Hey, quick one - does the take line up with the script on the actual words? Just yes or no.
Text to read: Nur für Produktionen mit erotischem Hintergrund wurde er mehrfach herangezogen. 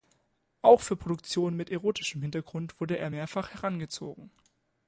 no